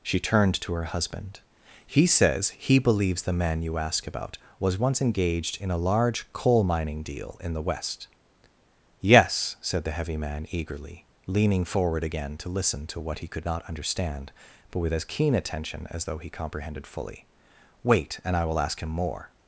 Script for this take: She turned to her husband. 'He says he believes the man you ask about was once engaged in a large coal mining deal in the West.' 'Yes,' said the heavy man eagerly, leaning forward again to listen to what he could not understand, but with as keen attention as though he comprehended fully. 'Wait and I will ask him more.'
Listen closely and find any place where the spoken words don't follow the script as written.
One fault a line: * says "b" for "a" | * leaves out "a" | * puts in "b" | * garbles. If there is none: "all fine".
all fine